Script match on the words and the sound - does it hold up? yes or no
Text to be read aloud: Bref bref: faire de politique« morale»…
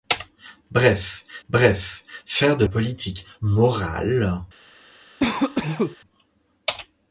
no